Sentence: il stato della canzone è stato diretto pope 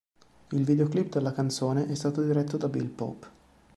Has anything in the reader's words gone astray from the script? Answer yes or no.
yes